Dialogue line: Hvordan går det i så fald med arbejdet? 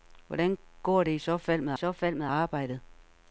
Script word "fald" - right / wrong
right